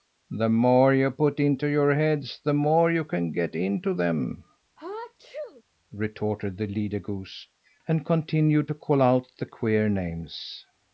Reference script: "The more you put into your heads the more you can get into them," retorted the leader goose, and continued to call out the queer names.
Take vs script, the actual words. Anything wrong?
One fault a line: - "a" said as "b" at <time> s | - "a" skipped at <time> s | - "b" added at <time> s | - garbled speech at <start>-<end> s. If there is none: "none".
none